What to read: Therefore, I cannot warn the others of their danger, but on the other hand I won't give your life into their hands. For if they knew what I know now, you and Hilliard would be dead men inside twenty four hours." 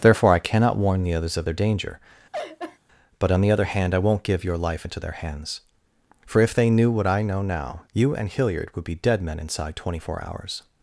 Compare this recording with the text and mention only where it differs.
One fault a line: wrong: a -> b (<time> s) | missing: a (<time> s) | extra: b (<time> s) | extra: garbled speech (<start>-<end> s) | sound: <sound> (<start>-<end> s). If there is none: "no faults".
sound: laugh (2.3-2.8 s)